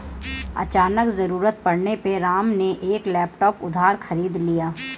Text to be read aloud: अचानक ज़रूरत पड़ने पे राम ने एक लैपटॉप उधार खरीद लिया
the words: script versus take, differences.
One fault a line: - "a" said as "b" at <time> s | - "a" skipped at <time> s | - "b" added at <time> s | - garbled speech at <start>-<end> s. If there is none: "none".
none